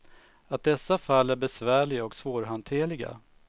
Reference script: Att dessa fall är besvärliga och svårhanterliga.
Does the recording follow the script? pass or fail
pass